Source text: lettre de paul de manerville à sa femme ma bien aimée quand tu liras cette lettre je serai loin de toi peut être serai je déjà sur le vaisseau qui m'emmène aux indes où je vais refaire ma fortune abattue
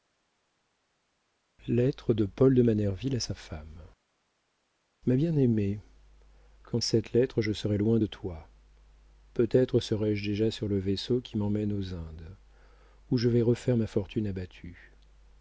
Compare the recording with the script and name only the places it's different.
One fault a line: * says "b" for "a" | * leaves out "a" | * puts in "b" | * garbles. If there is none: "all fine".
* leaves out "tu liras"